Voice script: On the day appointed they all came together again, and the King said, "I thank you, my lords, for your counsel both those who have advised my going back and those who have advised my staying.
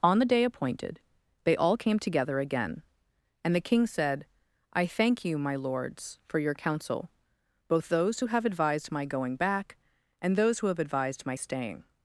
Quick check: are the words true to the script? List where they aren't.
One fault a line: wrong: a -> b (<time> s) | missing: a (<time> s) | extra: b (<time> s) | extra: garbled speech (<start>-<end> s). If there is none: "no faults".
no faults